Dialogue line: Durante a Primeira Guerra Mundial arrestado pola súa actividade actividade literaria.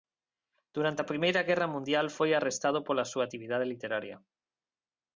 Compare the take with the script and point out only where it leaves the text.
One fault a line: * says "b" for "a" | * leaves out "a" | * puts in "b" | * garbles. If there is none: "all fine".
* puts in "foi"
* leaves out "actividade"